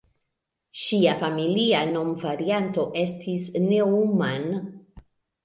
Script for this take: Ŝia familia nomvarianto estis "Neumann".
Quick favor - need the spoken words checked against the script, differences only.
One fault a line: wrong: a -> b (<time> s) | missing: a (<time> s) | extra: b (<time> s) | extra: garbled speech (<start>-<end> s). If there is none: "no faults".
no faults